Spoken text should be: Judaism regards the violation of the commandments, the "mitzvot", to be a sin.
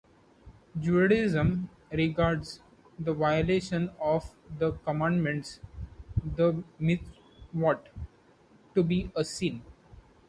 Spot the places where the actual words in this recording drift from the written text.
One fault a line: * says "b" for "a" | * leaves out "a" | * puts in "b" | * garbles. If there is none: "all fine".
all fine